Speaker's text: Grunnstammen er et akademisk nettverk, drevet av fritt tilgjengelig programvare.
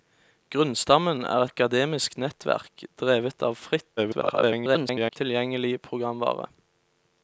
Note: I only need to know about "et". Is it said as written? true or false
false